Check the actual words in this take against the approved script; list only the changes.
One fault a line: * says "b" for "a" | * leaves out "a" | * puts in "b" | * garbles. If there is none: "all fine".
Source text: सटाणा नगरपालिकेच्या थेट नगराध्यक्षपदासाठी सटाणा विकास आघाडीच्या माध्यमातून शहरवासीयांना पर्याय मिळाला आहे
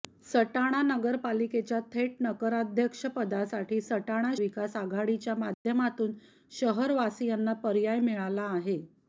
all fine